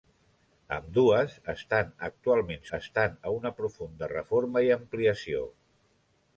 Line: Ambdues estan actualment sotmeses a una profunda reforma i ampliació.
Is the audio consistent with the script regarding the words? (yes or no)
no